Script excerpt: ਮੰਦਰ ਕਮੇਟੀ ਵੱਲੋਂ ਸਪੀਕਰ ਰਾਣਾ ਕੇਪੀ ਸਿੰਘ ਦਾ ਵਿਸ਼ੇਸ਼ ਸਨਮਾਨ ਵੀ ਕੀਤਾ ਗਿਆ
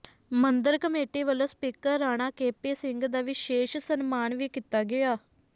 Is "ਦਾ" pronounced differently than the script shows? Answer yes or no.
no